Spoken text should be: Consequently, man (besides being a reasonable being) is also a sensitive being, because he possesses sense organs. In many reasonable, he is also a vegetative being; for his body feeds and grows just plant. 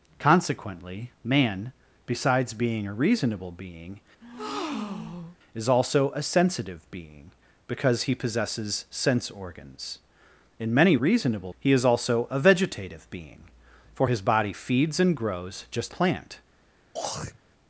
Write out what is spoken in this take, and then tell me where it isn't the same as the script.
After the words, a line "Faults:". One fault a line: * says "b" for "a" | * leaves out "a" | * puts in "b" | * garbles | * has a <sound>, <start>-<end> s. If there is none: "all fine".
Consequently, man (besides being a reasonable being) is also a sensitive being, because he possesses sense organs. In many reasonable, he is also a vegetative being; for his body feeds and grows just plant.
Faults:
* has a breath, 4.2-5.4 s
* has a throat clearing, 16.9-17.4 s